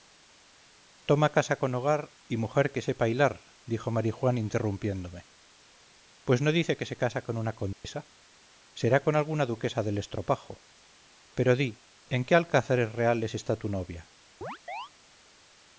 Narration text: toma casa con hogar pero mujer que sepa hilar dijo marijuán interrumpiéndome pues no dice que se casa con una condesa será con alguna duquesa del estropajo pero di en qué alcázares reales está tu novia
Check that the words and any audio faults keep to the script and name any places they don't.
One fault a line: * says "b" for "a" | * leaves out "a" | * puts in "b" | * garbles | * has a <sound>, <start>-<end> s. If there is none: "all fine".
* says "y" for "pero"
* has a dropout, 7.7-7.8 s
* has a chirp, 14.4-14.9 s